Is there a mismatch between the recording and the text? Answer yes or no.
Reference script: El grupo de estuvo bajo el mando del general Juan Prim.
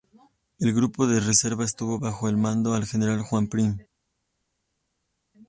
yes